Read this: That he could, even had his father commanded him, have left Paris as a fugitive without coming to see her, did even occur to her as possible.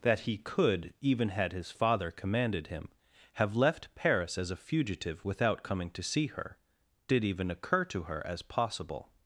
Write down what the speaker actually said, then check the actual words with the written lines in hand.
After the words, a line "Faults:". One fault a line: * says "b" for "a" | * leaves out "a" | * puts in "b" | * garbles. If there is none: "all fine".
That he could, even had his father commanded him, have left Paris as a fugitive without coming to see her, did even occur to her as possible.
Faults:
all fine